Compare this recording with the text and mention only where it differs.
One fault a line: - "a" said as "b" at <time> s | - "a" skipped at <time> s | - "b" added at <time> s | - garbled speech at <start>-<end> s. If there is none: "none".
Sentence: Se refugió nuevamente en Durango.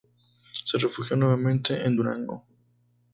none